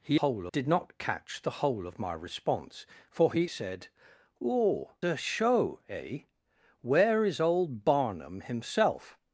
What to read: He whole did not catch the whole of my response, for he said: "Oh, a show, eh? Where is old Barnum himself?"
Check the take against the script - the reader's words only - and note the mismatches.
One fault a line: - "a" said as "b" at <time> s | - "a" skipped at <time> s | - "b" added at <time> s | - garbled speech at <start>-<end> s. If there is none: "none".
none